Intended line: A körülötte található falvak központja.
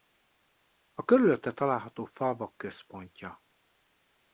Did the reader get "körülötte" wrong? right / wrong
right